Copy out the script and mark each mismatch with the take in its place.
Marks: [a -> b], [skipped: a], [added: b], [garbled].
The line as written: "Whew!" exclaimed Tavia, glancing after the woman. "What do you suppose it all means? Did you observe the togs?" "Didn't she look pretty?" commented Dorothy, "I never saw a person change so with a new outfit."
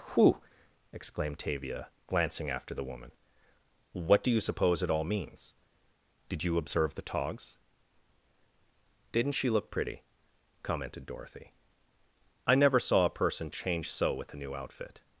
"Whew!" exclaimed Tavia, glancing after the woman. "What do you suppose it all means? Did you observe the togs?" "Didn't she look pretty?" commented Dorothy, "I never saw a person change so with a new outfit."